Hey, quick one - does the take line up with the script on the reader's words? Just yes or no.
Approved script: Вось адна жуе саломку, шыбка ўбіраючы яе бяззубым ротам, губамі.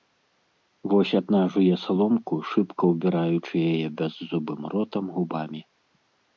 yes